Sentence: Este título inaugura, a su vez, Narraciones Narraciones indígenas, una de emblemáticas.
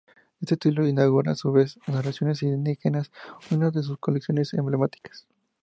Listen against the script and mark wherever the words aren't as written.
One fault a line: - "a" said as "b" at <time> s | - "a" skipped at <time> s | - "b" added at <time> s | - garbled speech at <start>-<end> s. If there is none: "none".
- "Narraciones" skipped at 2.4 s
- "sus colecciones" added at 3.8 s